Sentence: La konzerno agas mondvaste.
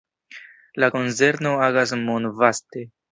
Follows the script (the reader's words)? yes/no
yes